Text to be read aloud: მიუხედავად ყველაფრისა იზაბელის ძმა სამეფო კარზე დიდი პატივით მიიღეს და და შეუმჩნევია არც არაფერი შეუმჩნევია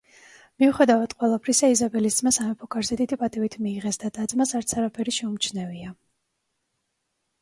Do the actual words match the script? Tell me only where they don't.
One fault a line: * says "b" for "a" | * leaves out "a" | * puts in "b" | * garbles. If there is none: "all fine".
* says "ძმას" for "შეუმჩნევია"